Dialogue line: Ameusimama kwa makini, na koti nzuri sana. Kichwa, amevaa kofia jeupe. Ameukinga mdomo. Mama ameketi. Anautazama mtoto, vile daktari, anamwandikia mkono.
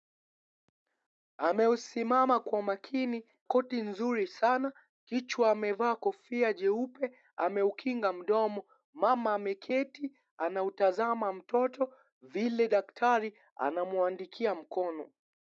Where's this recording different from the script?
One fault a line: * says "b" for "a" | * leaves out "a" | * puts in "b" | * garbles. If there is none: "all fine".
* leaves out "na"